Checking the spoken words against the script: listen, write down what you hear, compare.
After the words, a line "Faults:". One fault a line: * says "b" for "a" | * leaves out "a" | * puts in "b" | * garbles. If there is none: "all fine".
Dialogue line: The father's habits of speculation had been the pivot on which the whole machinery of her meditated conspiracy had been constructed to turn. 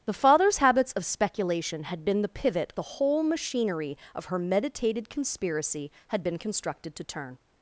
The father's habits of speculation had been the pivot the whole machinery of her meditated conspiracy had been constructed to turn.
Faults:
* leaves out "on which"